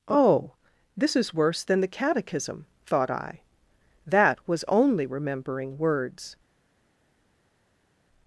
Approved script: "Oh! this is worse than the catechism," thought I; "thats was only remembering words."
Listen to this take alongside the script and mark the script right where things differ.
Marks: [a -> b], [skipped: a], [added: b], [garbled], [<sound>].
"Oh! this is worse than the catechism," thought I; ["thats -> that] was only remembering words."